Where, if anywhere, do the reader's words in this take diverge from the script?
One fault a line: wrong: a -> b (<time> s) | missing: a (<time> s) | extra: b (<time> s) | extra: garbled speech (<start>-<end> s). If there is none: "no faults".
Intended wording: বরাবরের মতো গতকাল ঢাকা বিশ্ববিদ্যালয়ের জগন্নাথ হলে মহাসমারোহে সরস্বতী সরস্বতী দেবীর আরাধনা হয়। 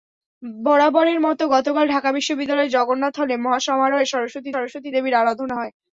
no faults